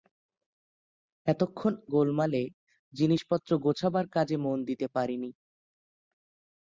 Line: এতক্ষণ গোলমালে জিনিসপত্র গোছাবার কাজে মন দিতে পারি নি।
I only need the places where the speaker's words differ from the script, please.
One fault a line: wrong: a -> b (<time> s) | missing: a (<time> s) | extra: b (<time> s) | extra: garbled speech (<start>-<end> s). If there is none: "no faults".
no faults